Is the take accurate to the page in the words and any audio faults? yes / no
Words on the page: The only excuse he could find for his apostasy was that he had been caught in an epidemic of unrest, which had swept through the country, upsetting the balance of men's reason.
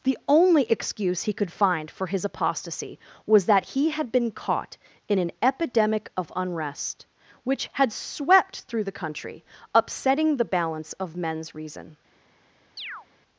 no